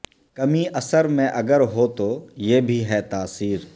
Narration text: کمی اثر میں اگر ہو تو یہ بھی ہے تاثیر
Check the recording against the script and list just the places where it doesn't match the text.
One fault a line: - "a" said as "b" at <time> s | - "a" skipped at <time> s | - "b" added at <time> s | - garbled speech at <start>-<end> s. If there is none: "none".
none